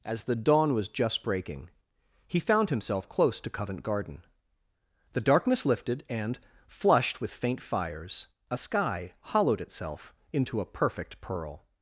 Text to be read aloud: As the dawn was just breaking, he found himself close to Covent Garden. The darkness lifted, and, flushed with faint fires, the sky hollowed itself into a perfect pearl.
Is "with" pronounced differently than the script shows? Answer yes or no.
no